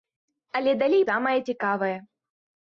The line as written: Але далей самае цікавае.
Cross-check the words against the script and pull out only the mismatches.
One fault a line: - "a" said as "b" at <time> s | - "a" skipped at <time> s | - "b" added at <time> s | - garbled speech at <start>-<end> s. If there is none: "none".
none